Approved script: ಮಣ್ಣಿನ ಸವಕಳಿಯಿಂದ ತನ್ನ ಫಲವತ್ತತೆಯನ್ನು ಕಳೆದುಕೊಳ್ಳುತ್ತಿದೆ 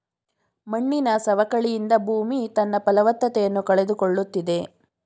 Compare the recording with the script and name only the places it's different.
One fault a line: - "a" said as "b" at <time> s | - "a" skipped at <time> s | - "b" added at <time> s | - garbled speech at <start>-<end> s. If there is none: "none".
- "ಭೂಮಿ" added at 2.0 s